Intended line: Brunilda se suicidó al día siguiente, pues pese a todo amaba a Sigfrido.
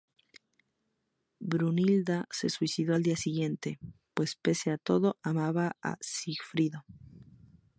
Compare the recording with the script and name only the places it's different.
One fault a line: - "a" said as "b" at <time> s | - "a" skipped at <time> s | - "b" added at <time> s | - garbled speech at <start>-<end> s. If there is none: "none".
none